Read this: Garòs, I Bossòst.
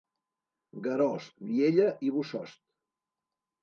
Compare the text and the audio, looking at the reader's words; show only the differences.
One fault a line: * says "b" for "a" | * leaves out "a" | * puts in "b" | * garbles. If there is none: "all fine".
* puts in "Viella"